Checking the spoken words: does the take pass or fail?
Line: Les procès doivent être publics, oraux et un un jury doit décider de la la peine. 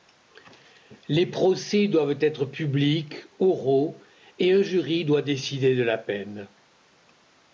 fail